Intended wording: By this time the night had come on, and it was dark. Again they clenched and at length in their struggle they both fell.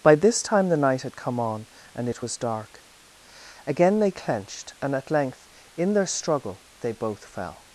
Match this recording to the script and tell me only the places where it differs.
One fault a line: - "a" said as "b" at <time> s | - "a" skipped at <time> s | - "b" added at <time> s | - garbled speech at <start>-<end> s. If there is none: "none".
none